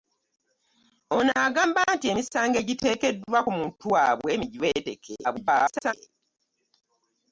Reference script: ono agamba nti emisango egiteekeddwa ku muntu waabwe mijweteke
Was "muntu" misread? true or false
false